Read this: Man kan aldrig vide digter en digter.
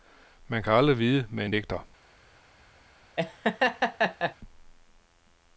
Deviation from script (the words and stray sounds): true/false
true